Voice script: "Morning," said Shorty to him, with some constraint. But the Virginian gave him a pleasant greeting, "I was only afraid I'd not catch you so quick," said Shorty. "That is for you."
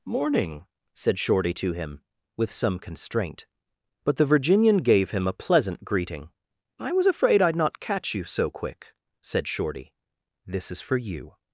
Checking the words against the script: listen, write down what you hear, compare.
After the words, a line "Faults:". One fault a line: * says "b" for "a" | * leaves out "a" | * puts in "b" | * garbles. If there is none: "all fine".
"Morning," said Shorty to him, with some constraint. But the Virginian gave him a pleasant greeting, "I was afraid I'd not catch you so quick," said Shorty. "This is for you."
Faults:
* leaves out "only"
* says "This" for "That"